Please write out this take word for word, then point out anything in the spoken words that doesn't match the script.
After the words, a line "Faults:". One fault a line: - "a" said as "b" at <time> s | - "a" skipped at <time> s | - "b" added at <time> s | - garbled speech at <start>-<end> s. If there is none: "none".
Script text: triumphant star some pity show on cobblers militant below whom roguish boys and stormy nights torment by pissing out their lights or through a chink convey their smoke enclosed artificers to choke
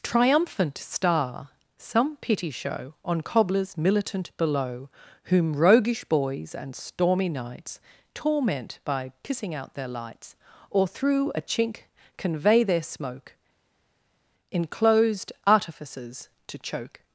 triumphant star some pity show on cobblers militant below whom roguish boys and stormy nights torment by pissing out their lights or through a chink convey their smoke enclosed artificers to choke
Faults:
none